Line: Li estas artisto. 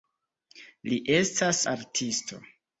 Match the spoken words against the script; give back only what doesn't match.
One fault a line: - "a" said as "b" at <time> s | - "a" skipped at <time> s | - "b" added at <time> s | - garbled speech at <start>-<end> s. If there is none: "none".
none